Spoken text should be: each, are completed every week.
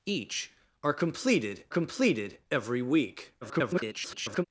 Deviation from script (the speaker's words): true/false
true